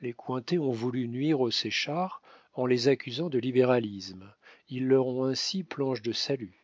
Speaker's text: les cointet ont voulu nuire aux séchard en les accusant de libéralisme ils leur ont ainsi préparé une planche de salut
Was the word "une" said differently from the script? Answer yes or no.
yes